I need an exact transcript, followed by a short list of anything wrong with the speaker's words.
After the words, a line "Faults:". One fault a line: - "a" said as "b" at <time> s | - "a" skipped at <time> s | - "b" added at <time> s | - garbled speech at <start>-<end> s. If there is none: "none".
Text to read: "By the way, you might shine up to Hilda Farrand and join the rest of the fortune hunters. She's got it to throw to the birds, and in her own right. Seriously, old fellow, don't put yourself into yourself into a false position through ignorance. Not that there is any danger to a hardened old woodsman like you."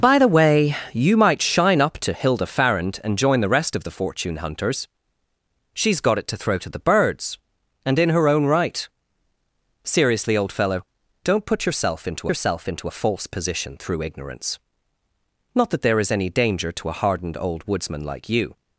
"By the way, you might shine up to Hilda Farrand and join the rest of the fortune hunters. She's got it to throw to the birds, and in her own right. Seriously, old fellow, don't put yourself into yourself into a false position through ignorance. Not that there is any danger to a hardened old woodsman like you."
Faults:
none